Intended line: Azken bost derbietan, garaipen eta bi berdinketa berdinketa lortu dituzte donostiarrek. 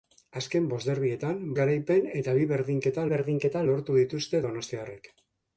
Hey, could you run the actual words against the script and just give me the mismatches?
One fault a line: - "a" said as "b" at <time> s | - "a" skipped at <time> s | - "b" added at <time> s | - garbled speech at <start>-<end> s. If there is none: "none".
none